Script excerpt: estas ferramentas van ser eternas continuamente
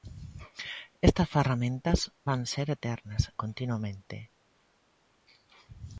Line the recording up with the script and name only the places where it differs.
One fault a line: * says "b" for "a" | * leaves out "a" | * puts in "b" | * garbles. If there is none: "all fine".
all fine